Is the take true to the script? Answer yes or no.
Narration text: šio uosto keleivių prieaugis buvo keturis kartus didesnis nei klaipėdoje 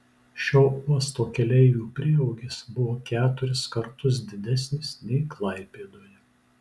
yes